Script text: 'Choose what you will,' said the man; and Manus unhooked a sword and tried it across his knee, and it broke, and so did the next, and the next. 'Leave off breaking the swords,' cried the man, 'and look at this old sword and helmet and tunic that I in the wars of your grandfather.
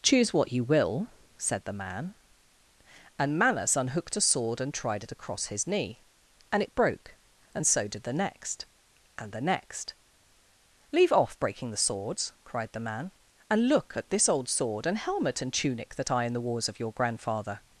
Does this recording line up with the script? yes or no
yes